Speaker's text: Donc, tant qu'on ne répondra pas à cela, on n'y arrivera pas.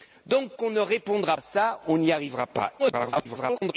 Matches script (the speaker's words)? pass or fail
fail